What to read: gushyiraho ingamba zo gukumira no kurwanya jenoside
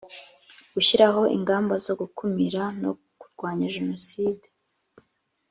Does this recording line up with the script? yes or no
yes